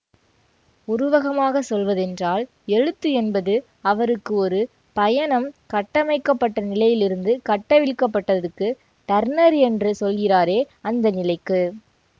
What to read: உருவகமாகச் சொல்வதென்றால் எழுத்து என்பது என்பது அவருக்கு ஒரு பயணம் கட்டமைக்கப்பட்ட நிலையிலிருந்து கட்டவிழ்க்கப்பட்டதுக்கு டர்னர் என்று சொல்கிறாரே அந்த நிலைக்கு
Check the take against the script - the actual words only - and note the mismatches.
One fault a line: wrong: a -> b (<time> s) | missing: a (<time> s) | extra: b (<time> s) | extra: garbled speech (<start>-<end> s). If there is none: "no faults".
missing: என்பது (3.5 s)